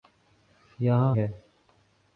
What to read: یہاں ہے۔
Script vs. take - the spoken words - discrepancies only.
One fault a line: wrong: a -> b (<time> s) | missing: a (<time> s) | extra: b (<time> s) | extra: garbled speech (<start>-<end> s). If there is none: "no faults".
no faults